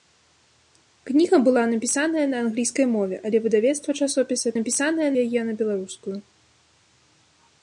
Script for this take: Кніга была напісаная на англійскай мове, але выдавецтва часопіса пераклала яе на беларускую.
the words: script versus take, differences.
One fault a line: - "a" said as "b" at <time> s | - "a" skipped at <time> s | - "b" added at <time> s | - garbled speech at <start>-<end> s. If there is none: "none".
- "пераклала" said as "напісаная" at 4.6 s